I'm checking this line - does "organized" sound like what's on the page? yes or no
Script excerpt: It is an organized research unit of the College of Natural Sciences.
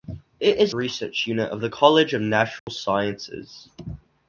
no